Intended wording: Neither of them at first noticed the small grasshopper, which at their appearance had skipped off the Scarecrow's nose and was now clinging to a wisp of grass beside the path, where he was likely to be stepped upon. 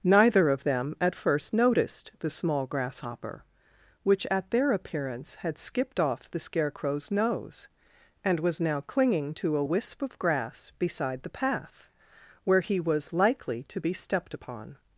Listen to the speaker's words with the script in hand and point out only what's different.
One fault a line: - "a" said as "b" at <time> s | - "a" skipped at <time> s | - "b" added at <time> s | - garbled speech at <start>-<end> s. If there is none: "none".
none